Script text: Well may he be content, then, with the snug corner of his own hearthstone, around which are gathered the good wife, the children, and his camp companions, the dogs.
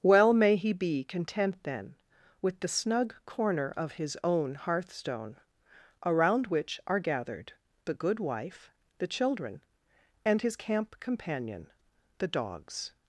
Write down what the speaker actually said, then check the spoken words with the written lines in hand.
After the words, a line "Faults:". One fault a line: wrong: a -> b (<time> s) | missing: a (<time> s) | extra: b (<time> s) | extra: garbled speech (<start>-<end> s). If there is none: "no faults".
Well may he be content, then, with the snug corner of his own hearthstone, around which are gathered the good wife, the children, and his camp companion, the dogs.
Faults:
wrong: companions -> companion (11.0 s)